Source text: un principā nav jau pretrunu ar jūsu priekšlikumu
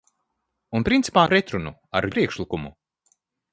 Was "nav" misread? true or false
true